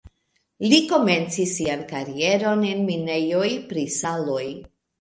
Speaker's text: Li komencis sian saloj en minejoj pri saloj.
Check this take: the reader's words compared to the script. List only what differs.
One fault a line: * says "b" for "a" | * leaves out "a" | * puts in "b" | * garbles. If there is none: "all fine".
* says "karieron" for "saloj"